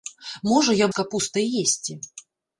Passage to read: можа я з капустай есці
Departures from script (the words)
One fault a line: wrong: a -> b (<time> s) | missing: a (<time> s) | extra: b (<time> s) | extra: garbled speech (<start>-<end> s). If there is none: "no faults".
no faults